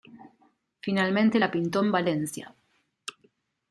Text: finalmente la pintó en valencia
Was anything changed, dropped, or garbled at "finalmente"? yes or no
no